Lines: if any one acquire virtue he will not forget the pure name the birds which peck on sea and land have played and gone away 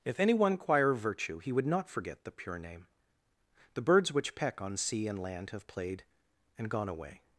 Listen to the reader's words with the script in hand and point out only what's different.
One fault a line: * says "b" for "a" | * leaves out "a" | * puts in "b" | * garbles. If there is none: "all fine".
* says "would" for "will"